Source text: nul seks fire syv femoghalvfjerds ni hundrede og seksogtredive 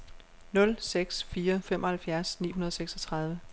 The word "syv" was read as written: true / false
false